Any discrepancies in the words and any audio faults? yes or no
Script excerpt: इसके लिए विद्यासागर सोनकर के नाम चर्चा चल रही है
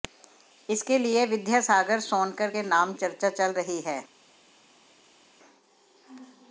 no